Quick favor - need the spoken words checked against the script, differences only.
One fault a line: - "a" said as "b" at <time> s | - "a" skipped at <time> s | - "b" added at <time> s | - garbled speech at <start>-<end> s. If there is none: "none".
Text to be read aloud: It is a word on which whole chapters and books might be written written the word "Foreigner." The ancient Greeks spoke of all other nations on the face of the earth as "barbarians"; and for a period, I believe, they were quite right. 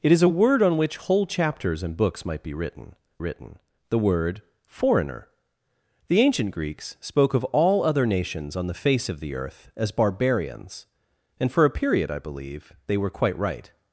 none